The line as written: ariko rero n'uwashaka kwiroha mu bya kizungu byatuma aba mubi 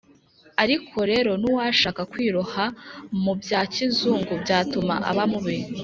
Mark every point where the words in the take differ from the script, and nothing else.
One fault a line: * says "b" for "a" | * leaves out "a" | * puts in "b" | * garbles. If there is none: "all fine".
all fine